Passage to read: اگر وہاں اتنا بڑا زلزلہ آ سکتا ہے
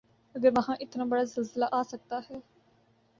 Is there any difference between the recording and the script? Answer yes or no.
no